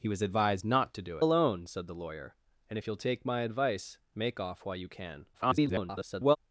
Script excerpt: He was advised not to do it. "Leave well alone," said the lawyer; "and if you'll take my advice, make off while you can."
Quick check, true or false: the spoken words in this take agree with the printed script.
false